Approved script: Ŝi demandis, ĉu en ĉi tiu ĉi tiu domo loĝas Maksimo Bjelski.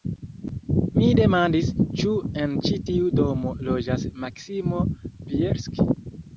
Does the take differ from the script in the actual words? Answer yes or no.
yes